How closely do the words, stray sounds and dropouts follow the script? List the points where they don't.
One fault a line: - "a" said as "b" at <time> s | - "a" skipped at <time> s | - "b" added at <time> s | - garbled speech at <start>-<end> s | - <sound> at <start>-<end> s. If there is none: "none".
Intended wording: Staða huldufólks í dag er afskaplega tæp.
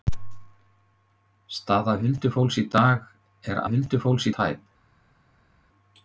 - "afskaplega" said as "huldufólks" at 3.7 s